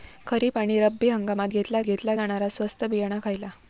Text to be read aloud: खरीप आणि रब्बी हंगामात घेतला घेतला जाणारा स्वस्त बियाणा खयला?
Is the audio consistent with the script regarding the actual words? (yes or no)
yes